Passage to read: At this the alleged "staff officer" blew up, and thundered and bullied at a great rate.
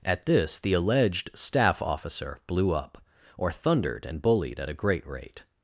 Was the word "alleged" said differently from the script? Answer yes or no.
no